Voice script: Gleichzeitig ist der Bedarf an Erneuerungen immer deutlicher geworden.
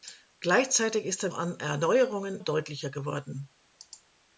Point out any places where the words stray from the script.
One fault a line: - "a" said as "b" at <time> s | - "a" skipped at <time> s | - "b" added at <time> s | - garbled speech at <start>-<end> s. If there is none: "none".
- "Bedarf" skipped at 1.3 s
- "immer" skipped at 2.4 s